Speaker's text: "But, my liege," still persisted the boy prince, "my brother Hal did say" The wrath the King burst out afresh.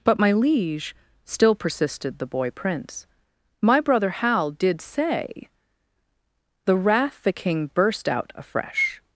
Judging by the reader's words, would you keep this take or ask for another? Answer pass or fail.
pass